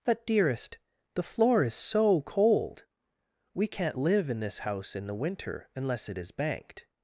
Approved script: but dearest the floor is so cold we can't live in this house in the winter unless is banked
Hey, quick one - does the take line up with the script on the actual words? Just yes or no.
no